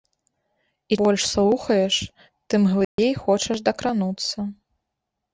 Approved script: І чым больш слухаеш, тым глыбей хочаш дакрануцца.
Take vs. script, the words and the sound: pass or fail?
fail